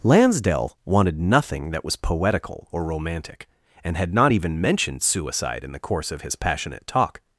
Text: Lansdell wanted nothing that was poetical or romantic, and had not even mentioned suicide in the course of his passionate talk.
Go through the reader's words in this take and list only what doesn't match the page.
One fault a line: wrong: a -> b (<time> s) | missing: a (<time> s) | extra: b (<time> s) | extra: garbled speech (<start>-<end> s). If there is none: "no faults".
no faults